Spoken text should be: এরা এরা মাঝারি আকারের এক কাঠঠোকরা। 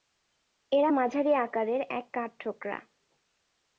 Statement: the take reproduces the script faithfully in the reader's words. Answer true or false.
false